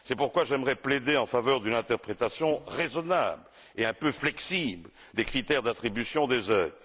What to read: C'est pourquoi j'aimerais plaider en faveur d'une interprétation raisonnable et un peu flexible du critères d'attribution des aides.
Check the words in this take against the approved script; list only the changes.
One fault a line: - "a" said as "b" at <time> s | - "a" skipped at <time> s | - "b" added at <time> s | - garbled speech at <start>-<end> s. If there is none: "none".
- "du" said as "des" at 5.1 s